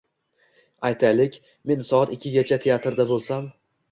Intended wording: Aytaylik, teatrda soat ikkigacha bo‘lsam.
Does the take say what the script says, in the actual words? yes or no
no